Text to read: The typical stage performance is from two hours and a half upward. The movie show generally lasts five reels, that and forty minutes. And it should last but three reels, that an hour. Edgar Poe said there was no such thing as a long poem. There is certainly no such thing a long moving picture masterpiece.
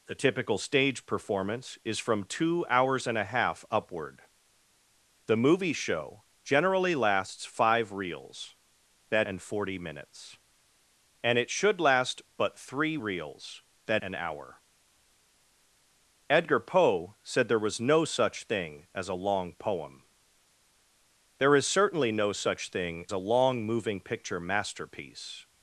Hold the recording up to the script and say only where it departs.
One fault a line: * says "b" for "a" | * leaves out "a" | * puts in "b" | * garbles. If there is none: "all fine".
all fine